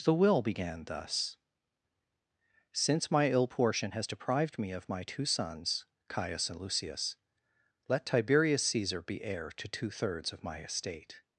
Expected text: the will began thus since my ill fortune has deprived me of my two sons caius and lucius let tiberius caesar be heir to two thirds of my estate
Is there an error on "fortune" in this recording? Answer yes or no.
yes